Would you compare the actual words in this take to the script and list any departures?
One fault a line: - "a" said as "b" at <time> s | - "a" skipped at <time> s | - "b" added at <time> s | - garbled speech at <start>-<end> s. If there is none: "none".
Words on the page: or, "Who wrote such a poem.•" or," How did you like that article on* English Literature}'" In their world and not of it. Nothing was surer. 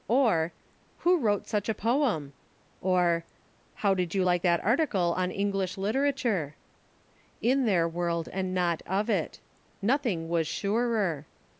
none